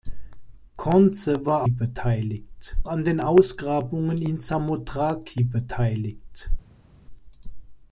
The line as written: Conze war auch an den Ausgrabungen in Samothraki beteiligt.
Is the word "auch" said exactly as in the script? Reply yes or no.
no